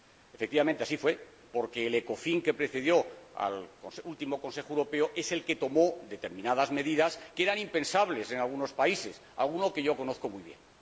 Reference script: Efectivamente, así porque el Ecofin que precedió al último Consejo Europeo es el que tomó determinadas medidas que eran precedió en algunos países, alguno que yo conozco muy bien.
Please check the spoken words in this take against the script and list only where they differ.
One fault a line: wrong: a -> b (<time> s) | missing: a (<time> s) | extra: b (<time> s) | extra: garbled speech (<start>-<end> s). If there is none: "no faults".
extra: fue (1.0 s)
wrong: precedió -> impensables (7.6 s)